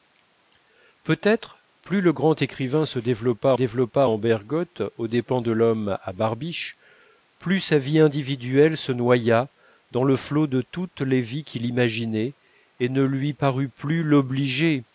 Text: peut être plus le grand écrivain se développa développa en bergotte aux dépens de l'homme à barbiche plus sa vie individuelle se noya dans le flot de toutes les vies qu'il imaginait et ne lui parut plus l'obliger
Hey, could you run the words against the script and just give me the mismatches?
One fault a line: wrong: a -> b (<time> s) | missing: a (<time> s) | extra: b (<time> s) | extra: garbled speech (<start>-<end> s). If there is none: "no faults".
no faults